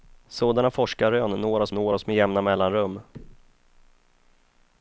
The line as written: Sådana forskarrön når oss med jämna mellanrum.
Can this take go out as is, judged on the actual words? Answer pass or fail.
fail